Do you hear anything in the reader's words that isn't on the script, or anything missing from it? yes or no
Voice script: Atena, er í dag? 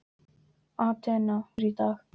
no